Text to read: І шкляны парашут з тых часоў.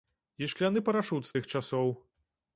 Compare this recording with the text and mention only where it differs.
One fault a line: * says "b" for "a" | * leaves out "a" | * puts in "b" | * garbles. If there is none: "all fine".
all fine